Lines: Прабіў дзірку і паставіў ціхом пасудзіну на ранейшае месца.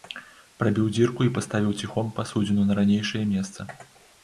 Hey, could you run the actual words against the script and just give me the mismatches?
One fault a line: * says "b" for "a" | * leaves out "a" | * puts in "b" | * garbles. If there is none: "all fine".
all fine